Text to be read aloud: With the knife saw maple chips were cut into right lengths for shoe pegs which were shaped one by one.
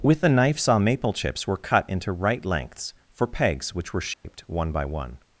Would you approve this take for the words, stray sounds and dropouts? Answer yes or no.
no